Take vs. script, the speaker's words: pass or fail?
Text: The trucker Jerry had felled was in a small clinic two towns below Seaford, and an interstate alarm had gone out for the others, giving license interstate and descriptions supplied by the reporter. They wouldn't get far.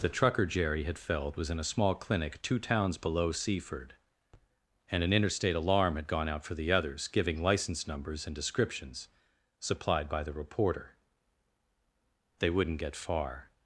fail